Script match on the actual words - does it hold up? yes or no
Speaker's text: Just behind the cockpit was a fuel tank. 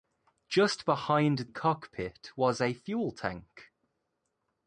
no